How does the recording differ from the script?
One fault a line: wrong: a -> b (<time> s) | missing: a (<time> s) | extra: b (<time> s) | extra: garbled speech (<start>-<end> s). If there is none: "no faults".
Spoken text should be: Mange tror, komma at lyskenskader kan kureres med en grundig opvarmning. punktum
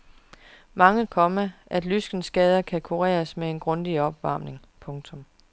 missing: tror (1.1 s)